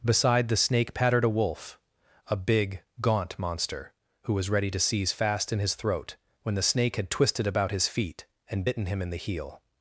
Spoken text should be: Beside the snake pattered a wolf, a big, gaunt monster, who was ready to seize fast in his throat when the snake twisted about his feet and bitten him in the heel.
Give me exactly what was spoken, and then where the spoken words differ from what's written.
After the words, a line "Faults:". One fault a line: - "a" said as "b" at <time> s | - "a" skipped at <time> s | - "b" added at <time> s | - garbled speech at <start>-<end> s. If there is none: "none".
Beside the snake pattered a wolf, a big, gaunt monster, who was ready to seize fast in his throat when the snake had twisted about his feet and bitten him in the heel.
Faults:
- "had" added at 6.9 s